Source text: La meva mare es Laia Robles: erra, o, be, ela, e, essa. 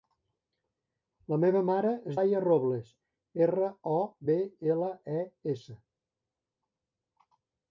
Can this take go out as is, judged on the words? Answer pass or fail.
pass